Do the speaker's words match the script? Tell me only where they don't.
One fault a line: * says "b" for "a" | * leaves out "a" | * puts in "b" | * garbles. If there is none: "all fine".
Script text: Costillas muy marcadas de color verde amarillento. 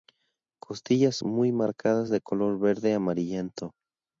all fine